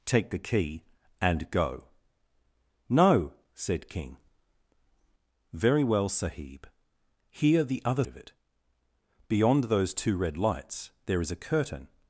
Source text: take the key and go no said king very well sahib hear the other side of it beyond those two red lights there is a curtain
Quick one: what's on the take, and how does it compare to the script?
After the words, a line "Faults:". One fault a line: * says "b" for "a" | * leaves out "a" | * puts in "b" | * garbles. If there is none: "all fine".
take the key and go no said king very well sahib hear the other of it beyond those two red lights there is a curtain
Faults:
* leaves out "side"